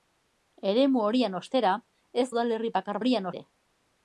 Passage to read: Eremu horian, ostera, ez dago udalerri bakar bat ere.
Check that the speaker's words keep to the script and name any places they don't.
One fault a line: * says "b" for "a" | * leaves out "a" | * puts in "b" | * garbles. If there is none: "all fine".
* leaves out "dago"
* says "horian" for "bat"